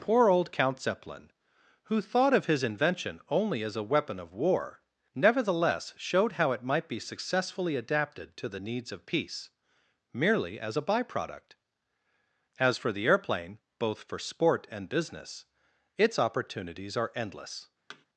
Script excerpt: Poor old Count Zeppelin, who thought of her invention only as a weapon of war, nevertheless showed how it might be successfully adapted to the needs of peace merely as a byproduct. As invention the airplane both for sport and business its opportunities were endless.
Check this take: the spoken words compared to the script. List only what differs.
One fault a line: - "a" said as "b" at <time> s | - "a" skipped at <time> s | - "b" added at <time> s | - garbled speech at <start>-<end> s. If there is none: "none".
- "her" said as "his" at 2.5 s
- "invention" said as "for" at 12.8 s
- "were" said as "are" at 17.0 s